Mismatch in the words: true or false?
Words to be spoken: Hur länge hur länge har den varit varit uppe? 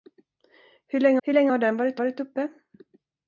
false